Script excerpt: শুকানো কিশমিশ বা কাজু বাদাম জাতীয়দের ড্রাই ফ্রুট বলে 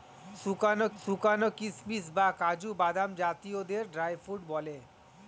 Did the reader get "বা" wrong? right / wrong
right